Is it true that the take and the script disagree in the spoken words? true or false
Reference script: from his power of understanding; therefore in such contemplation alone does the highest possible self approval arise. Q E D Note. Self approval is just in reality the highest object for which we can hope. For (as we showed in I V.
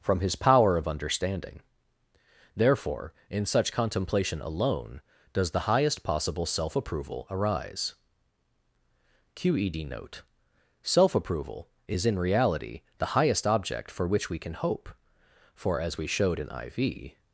true